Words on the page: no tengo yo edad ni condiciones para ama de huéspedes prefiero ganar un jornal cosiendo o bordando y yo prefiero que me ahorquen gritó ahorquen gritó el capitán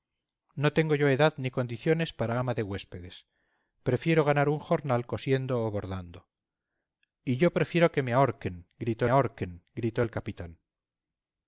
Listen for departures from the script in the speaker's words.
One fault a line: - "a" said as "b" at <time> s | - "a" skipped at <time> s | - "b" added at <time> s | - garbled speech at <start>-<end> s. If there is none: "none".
none